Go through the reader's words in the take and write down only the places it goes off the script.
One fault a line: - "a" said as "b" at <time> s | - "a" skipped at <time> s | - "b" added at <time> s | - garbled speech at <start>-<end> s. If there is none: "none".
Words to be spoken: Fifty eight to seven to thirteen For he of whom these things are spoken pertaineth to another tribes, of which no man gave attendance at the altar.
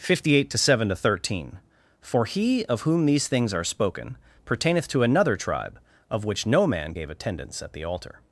- "tribes" said as "tribe" at 5.4 s